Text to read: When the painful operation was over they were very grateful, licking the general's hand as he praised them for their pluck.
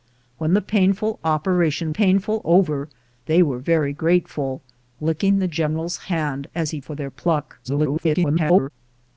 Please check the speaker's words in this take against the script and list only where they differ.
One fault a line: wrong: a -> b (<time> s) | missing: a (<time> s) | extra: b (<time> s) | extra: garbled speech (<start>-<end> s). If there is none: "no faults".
wrong: was -> painful (1.9 s)
missing: praised them (6.8 s)
extra: garbled speech (7.6-8.7 s)